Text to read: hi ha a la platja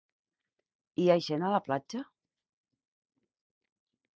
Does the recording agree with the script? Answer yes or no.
no